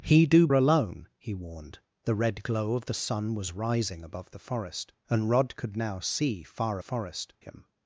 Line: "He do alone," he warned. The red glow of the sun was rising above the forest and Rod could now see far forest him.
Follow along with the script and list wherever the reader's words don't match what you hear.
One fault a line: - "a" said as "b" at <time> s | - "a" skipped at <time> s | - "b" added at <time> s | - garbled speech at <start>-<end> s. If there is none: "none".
none